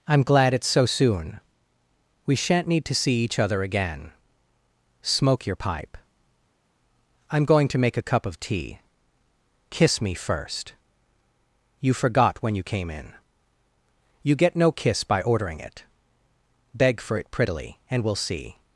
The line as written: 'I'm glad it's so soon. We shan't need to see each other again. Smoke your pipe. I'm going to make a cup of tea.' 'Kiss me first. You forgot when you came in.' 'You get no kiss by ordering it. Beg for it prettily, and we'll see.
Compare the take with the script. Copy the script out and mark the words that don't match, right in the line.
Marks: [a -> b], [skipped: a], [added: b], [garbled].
'I'm glad it's so soon. We shan't need to see each other again. Smoke your pipe. I'm going to make a cup of tea.' 'Kiss me first. You forgot when you came in.' 'You get no kiss by ordering it. Beg for it prettily, and we'll see.